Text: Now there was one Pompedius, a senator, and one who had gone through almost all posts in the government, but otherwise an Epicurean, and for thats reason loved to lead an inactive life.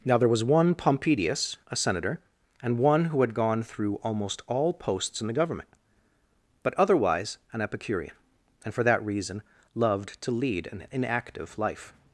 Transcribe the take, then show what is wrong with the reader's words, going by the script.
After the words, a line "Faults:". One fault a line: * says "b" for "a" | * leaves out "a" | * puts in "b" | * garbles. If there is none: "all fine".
Now there was one Pompedius, a senator, and one who had gone through almost all posts in the government, but otherwise an Epicurean, and for that reason loved to lead an inactive life.
Faults:
* says "that" for "thats"